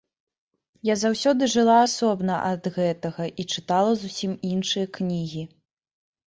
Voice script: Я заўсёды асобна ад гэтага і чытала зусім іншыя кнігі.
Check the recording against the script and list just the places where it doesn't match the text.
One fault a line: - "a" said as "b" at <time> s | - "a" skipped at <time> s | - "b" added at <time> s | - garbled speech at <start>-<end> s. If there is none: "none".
- "жыла" added at 1.6 s